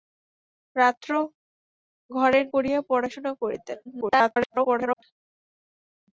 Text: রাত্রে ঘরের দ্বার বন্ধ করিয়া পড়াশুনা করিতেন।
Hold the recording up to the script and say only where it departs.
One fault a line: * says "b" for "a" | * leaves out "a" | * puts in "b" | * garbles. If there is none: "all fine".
* leaves out "দ্বার বন্ধ"
* garbles